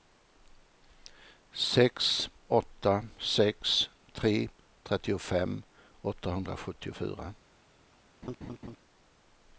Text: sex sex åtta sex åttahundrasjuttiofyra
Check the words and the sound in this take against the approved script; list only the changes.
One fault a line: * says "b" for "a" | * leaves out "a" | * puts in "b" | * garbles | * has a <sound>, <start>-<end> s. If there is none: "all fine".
* puts in "åtta"
* says "tre trettiofem" for "åtta sex"
* has a laugh, 8.2-8.8 s